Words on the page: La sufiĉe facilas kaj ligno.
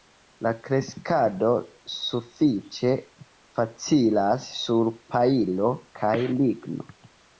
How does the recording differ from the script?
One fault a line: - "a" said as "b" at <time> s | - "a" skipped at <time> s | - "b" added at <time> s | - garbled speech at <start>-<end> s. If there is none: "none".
- "kreskado" added at 0.7 s
- "sur pajlo" added at 4.6 s